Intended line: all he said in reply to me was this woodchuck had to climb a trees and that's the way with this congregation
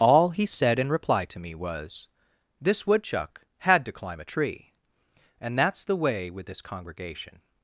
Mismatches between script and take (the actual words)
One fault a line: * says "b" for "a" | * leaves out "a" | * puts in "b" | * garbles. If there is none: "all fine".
* says "tree" for "trees"